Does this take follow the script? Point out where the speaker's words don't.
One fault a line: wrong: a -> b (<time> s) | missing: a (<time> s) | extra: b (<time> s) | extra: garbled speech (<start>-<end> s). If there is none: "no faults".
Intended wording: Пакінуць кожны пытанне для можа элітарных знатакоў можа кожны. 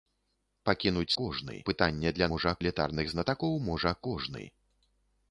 no faults